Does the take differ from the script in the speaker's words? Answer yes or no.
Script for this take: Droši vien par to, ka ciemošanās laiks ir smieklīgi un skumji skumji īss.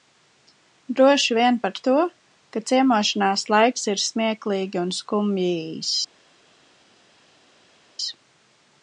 yes